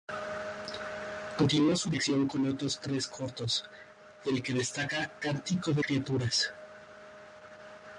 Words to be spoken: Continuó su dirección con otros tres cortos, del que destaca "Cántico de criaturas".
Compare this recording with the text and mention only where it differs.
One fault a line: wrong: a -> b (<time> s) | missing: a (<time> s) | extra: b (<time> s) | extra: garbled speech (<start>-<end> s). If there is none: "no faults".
no faults